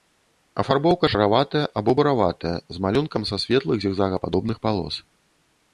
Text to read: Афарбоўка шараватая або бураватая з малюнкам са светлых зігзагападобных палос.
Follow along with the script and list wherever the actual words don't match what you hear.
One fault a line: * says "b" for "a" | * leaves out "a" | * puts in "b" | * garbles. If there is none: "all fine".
all fine